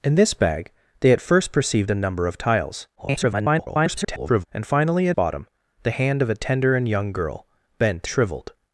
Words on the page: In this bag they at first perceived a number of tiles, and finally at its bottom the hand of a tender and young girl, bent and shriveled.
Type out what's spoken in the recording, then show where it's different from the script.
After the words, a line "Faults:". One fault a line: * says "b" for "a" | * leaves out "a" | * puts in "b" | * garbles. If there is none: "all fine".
In this bag they at first perceived a number of tiles, [garbled] and finally at bottom the hand of a tender and young girl, bent shriveled.
Faults:
* garbles
* leaves out "its"
* leaves out "and"